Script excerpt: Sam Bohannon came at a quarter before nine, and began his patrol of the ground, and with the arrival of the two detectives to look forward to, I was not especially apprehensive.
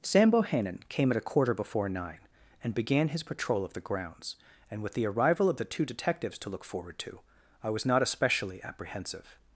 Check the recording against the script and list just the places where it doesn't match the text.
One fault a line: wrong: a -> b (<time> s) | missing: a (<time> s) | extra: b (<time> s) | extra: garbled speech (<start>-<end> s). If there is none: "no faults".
wrong: ground -> grounds (3.8 s)